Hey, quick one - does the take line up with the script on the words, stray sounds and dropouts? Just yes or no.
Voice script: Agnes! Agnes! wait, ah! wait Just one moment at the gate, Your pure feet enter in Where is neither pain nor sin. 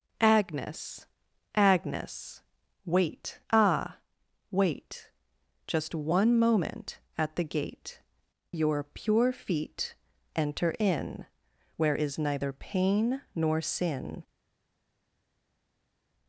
yes